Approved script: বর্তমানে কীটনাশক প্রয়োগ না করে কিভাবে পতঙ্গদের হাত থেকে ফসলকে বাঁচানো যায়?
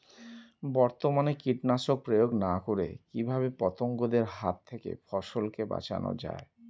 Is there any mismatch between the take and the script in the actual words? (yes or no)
no